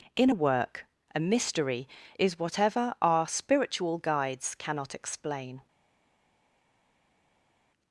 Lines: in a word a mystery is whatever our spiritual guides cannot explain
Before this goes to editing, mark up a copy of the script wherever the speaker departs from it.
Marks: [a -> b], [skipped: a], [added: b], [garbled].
in a [word -> work] a mystery is whatever our spiritual guides cannot explain